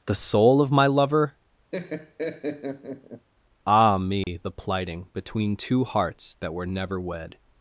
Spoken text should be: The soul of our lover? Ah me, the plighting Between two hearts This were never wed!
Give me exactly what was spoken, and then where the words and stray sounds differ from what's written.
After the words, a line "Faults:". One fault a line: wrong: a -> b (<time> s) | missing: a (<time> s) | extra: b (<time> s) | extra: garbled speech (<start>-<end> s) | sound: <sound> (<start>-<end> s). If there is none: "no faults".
The soul of my lover? Ah me, the plighting Between two hearts That were never wed!
Faults:
wrong: our -> my (0.7 s)
sound: laugh (1.7-3.3 s)
sound: dropout (4.2-4.3 s)
wrong: This -> That (6.4 s)